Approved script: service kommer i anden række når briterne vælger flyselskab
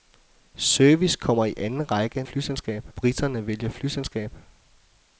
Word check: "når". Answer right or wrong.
wrong